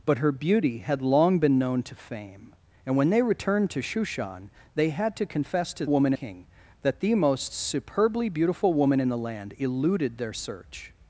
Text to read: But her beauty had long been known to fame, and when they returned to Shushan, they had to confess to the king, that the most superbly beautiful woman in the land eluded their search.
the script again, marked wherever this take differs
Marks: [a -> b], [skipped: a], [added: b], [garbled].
But her beauty had long been known to fame, and when they returned to Shushan, they had to confess to [the -> woman] king, that the most superbly beautiful woman in the land eluded their search.